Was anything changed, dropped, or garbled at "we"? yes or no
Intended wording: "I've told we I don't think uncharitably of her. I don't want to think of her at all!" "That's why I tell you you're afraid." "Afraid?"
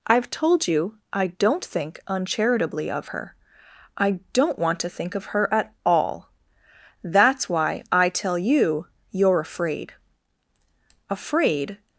yes